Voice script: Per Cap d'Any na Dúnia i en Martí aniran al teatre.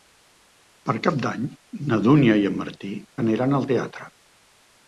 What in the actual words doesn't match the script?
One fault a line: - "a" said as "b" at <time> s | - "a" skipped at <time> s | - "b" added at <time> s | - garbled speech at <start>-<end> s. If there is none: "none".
none